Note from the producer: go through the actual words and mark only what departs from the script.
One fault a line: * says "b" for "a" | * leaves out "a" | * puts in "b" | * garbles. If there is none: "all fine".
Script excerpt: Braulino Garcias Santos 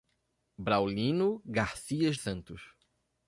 all fine